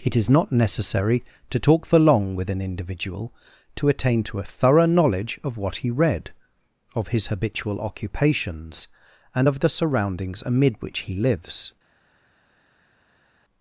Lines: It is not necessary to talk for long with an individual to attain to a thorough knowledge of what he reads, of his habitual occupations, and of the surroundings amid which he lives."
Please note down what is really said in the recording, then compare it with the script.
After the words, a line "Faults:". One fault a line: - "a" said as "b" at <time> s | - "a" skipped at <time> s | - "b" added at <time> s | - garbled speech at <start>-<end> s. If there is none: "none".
It is not necessary to talk for long with an individual to attain to a thorough knowledge of what he read, of his habitual occupations, and of the surroundings amid which he lives."
Faults:
- "reads" said as "read" at 5.9 s